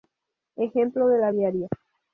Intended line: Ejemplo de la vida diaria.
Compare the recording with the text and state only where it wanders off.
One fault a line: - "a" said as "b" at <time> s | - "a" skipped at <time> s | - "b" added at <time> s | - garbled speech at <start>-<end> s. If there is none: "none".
- "vida" skipped at 1.3 s